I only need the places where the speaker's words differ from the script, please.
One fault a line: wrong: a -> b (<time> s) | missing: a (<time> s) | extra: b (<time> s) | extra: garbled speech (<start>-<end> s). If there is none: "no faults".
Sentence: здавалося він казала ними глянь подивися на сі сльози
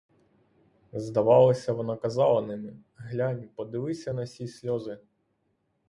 wrong: він -> вона (1.7 s)